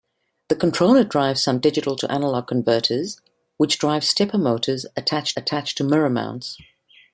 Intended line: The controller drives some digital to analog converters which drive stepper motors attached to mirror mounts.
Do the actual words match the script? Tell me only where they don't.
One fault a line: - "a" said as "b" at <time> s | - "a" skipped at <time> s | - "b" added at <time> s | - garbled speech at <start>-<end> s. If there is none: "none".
- "attached" added at 5.4 s